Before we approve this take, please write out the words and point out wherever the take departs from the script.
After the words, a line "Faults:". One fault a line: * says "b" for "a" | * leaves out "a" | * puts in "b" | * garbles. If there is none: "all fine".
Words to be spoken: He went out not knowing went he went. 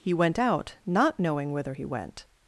He went out not knowing whither he went.
Faults:
* says "whither" for "went"